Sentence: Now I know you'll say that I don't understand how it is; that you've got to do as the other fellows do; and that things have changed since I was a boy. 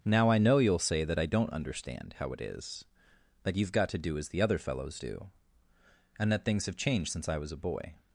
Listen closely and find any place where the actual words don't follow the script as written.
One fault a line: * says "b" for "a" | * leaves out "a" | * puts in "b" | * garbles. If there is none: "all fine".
all fine